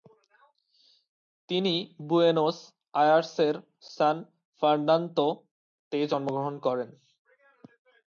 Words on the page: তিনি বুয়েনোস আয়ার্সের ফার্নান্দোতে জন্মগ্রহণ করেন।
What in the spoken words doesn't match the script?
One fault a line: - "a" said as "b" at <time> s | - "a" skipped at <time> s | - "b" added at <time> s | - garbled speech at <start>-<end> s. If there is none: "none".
- "সান" added at 3.9 s